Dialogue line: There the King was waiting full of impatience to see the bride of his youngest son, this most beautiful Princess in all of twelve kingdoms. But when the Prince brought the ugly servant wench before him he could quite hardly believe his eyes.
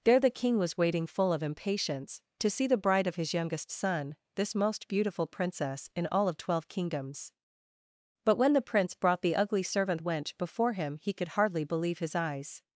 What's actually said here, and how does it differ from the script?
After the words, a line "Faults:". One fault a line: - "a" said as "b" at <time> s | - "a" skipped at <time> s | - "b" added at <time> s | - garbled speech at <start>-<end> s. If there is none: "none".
There the King was waiting full of impatience to see the bride of his youngest son, this most beautiful Princess in all of twelve kingdoms. But when the Prince brought the ugly servant wench before him he could hardly believe his eyes.
Faults:
- "quite" skipped at 11.3 s